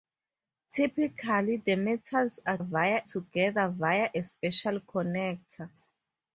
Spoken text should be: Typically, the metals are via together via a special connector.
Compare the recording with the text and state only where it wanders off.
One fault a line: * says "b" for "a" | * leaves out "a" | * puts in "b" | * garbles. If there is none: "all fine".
all fine